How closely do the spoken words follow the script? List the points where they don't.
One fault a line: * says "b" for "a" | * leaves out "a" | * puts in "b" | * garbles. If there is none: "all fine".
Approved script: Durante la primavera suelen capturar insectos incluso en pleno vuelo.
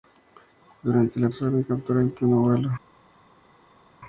* leaves out "primavera"
* leaves out "insectos incluso"